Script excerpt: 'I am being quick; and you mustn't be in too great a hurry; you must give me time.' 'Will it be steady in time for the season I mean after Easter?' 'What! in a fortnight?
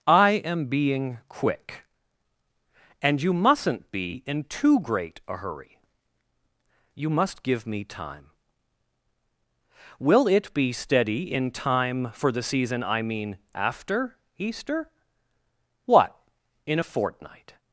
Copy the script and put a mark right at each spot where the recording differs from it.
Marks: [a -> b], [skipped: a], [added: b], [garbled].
'I am being quick; and you mustn't be in too great a hurry; you must give me time.' 'Will it be steady in time for the season I mean after Easter?' 'What! in a fortnight?